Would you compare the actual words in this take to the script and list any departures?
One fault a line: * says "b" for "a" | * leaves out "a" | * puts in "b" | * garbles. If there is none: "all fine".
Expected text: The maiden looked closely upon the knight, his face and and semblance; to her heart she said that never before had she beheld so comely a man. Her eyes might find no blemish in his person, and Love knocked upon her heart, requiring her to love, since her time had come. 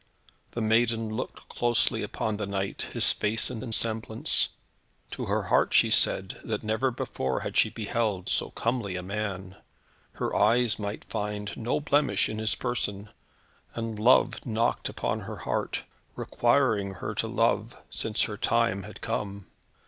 all fine